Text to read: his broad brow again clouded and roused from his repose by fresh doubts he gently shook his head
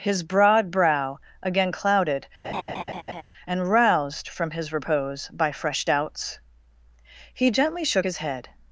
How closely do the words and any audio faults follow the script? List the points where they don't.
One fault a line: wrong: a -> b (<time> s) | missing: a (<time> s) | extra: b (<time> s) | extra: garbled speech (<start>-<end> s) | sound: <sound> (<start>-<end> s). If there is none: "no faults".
sound: laugh (2.4-3.2 s)